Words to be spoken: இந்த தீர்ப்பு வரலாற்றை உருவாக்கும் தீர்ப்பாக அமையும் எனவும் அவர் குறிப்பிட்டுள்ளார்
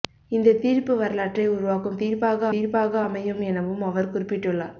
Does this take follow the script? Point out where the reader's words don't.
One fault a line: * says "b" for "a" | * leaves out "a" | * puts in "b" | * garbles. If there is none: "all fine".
* puts in "தீர்ப்பாக"